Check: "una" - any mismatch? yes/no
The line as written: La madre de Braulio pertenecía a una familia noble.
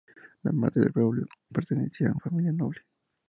yes